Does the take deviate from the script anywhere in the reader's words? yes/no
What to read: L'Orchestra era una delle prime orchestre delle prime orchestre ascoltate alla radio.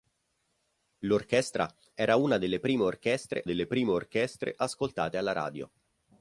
no